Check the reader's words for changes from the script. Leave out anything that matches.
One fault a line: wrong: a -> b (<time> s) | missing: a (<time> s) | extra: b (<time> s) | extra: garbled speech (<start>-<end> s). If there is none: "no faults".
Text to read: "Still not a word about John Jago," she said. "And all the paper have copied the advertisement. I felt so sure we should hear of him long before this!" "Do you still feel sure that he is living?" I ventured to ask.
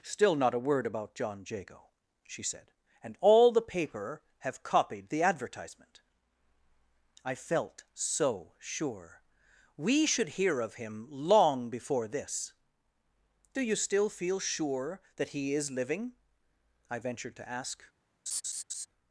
no faults